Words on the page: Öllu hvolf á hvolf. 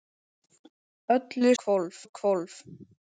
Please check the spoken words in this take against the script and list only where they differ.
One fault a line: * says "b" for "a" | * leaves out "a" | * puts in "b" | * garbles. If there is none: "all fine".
all fine